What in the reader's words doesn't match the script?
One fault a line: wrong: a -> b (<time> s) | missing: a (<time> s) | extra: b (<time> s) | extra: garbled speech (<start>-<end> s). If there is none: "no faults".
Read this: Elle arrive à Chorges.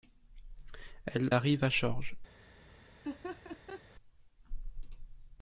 no faults